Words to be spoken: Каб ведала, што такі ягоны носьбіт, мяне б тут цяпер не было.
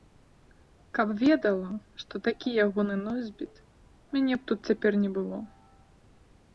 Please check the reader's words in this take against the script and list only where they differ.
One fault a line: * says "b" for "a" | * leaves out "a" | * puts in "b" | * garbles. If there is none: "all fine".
all fine